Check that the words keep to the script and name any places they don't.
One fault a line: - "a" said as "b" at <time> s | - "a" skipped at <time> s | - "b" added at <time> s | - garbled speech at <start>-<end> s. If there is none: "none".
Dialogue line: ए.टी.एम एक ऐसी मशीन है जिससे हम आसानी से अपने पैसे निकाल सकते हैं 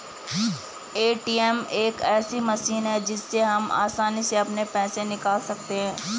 none